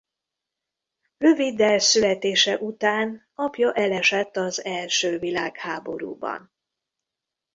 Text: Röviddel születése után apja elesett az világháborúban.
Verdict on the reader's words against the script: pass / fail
fail